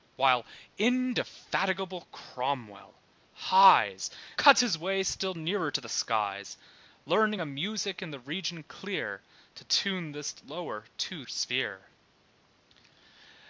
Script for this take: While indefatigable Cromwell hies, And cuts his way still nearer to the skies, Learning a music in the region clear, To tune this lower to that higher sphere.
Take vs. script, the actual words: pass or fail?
fail